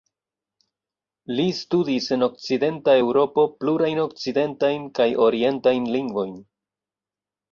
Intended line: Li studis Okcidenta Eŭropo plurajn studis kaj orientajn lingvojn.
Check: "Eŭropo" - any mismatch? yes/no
no